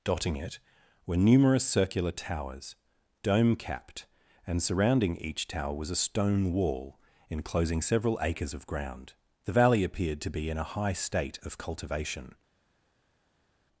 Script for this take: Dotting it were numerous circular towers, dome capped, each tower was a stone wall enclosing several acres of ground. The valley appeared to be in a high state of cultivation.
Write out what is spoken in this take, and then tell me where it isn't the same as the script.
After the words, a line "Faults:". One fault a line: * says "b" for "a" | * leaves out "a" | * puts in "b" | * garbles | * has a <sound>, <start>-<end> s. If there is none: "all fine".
Dotting it were numerous circular towers, dome capped, and surrounding each tower was a stone wall enclosing several acres of ground. The valley appeared to be in a high state of cultivation.
Faults:
* puts in "and surrounding"